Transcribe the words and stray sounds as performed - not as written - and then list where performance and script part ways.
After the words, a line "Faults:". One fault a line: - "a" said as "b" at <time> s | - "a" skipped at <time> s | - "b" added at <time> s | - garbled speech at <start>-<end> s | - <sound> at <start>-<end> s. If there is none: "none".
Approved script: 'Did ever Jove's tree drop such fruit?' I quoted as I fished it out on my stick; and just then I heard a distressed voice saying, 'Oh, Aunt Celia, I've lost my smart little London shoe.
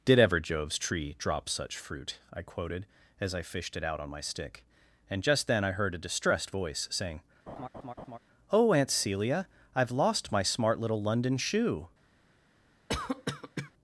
'Did ever Jove's tree drop such fruit?' I quoted as I fished it out on my stick; and just then I heard a distressed voice saying, 'Oh, Aunt Celia, I've lost my smart little London shoe.
Faults:
- laugh at 7.5-8.2 s
- cough at 12.9-13.7 s